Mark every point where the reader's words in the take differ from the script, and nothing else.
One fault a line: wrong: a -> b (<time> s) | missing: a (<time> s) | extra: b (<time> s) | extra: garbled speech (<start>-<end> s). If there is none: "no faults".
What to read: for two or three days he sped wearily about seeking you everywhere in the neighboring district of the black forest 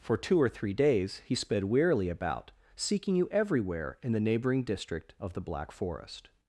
no faults